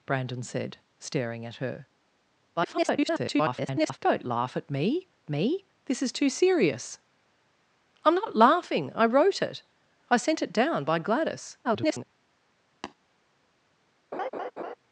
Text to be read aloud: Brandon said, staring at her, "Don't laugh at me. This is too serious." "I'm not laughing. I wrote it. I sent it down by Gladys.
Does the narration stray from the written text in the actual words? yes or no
yes